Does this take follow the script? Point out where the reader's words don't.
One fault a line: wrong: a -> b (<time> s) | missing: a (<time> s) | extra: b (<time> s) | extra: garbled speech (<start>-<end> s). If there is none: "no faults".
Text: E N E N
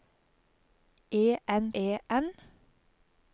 no faults